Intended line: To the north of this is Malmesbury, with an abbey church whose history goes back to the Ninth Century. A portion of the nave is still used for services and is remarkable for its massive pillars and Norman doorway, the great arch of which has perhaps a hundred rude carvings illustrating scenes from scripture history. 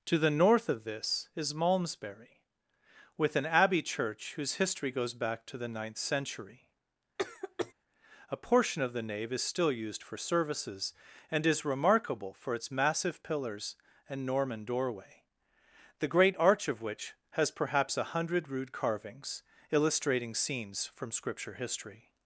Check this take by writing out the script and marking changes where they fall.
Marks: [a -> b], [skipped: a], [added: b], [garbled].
To the north of this is Malmesbury, with an abbey church whose history goes back to the Ninth Century. A portion of the nave is still used for services and is remarkable for its massive pillars and Norman doorway, the great arch of which has perhaps a hundred rude carvings illustrating scenes from scripture history.